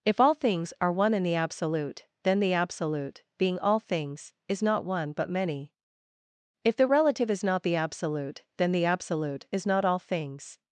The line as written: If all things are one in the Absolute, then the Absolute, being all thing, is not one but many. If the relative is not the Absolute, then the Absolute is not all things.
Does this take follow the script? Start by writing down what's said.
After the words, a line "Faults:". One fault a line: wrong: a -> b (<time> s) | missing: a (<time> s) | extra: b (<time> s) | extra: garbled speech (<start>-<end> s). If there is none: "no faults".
If all things are one in the Absolute, then the Absolute, being all things, is not one but many. If the relative is not the Absolute, then the Absolute is not all things.
Faults:
wrong: thing -> things (3.8 s)